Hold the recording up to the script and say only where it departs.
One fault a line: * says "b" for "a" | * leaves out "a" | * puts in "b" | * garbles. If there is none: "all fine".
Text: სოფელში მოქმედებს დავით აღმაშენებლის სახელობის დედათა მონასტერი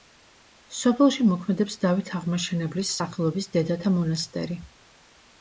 all fine